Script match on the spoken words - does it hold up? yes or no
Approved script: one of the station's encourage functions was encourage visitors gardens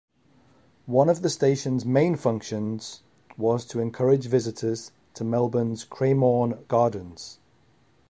no